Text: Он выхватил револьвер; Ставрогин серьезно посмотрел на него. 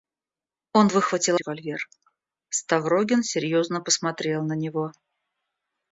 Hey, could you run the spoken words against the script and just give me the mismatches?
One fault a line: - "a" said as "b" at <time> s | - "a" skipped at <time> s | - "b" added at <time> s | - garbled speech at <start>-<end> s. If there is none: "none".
none